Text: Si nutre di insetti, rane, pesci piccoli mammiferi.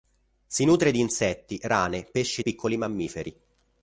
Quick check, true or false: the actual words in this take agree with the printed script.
true